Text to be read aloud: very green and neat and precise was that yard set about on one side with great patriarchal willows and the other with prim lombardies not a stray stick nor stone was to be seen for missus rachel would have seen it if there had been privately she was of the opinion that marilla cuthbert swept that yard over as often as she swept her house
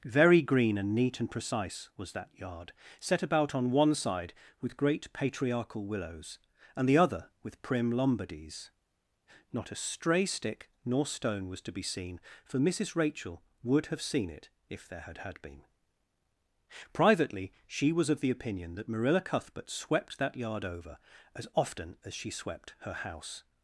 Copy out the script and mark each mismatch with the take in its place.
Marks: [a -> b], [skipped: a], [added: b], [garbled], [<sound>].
very green and neat and precise was that yard set about on one side with great patriarchal willows and the other with prim lombardies not a stray stick nor stone was to be seen for missus rachel would have seen it if there had [added: had] been privately she was of the opinion that marilla cuthbert swept that yard over as often as she swept her house